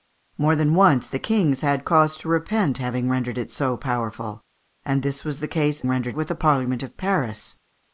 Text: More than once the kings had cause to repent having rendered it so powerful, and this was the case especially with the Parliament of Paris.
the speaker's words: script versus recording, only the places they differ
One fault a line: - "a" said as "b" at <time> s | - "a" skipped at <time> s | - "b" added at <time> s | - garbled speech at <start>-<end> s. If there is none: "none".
- "especially" said as "rendered" at 5.9 s